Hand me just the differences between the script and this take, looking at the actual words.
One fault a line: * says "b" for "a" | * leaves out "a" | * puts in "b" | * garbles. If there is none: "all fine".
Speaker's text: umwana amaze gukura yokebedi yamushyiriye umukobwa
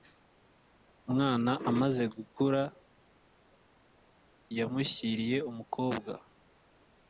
* leaves out "yokebedi"